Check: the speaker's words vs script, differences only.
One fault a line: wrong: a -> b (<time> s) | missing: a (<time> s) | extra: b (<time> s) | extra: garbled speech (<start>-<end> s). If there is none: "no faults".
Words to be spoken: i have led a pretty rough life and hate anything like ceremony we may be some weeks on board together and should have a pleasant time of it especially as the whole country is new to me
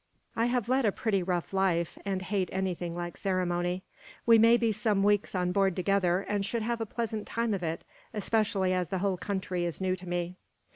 no faults